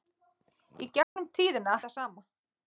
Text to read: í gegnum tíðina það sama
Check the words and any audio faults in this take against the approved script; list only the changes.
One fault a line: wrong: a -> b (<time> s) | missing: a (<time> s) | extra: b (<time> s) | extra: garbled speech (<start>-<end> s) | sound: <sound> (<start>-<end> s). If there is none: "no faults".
sound: dropout (1.0-1.2 s)